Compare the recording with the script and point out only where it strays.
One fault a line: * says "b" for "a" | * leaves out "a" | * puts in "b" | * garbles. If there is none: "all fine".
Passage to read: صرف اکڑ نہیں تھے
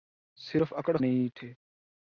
all fine